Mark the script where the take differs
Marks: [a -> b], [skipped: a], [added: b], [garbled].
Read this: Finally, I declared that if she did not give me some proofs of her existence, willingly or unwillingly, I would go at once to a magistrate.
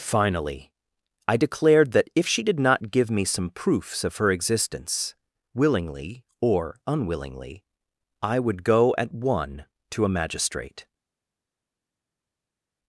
Finally, I declared that if she did not give me some proofs of her existence, willingly or unwillingly, I would go at [once -> one] to a magistrate.